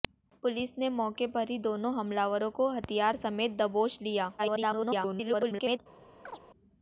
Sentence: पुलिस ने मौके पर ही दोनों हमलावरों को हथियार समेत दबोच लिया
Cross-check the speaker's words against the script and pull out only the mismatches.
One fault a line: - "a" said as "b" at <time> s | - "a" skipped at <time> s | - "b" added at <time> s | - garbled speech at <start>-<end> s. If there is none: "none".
- garbled speech at 4.4-5.8 s